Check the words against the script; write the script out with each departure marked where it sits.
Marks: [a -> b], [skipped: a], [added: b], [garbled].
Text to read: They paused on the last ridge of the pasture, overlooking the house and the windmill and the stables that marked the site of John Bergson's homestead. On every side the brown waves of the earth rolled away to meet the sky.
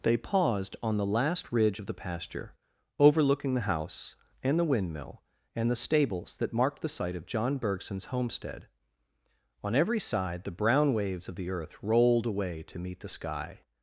They paused on the last ridge of the pasture, overlooking the house and the windmill and the stables that marked the site of John Bergson's homestead. On every side the brown waves of the earth rolled away to meet the sky.